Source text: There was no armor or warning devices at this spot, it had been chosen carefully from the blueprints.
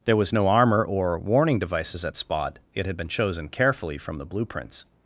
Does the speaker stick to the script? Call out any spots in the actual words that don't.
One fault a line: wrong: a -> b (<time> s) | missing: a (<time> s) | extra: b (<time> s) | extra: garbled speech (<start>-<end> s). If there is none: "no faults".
missing: this (2.2 s)